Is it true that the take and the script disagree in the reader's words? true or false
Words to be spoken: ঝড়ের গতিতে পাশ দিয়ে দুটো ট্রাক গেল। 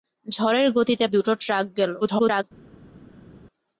true